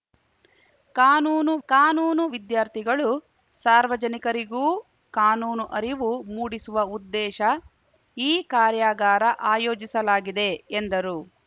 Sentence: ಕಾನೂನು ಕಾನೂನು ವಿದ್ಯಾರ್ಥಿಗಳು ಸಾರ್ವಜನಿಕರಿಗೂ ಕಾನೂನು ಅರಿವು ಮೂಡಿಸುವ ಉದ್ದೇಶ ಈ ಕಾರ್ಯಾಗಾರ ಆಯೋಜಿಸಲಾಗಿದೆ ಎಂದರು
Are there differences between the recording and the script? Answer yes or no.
no